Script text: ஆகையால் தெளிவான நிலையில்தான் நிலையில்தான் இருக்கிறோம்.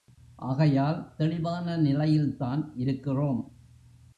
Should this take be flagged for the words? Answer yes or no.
yes